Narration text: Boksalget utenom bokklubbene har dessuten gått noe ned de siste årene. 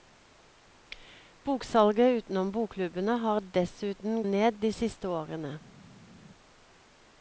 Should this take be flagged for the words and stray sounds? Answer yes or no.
yes